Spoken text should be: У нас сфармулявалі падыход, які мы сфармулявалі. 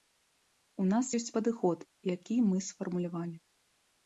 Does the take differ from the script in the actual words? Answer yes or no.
yes